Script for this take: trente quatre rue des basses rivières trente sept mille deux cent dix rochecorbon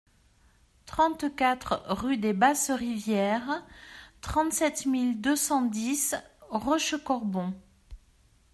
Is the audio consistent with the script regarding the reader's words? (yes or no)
yes